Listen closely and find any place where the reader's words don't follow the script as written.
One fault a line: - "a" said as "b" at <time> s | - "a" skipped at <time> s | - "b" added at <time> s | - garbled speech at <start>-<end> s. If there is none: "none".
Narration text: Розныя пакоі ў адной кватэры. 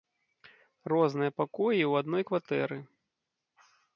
none